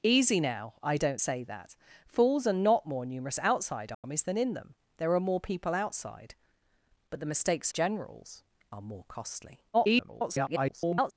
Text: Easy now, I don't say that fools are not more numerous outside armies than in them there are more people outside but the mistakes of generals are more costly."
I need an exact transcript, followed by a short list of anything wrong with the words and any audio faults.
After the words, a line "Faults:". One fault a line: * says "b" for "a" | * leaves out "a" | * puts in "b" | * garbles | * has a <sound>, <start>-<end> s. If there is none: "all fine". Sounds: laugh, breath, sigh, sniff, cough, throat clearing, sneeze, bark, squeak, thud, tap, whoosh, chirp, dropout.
Easy now, I don't say that fools are not more numerous outside armies than in them there are more people outside but the mistakes generals are more costly." [garbled]
Faults:
* has a dropout, 3.9-4.0 s
* leaves out "of"
* garbles